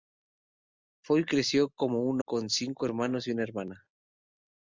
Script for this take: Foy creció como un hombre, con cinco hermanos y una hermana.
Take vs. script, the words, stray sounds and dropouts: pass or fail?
fail